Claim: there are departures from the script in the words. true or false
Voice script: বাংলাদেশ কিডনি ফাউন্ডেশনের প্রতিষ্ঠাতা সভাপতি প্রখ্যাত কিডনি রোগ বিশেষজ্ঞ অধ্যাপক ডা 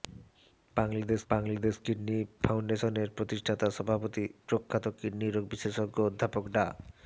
true